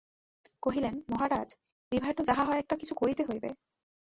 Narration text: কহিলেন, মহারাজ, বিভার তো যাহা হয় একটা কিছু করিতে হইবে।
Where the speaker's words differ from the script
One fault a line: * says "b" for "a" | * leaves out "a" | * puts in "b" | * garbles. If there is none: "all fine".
all fine